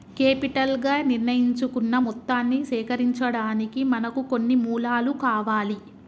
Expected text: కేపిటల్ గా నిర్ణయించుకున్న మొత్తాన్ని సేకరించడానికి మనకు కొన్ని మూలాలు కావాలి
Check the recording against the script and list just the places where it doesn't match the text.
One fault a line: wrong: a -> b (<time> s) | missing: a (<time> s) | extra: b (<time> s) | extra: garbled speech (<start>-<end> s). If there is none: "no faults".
no faults